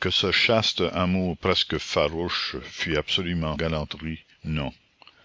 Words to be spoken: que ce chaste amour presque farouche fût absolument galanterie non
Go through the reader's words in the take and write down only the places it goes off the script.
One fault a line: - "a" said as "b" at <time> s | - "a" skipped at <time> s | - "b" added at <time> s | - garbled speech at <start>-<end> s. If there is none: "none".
none